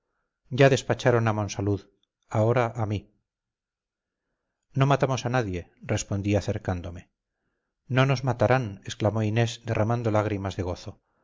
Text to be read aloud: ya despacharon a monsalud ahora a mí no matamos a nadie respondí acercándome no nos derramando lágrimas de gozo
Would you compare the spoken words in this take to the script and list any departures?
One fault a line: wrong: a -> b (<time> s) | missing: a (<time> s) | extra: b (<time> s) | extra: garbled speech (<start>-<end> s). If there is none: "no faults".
extra: matarán exclamó inés (8.3 s)